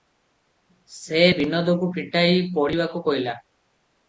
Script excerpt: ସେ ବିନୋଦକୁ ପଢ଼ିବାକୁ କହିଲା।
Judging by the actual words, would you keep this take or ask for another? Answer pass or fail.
fail